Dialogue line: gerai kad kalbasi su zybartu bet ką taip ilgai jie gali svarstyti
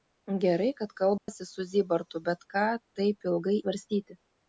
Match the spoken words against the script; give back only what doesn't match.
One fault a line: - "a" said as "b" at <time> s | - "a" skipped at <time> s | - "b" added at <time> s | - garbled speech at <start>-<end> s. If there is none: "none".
- "jie gali" skipped at 3.6 s